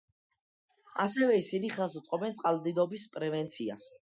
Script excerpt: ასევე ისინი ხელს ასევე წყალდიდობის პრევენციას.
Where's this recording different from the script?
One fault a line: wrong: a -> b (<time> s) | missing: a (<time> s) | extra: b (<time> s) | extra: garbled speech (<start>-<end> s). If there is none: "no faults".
wrong: ასევე -> უწყობენ (2.0 s)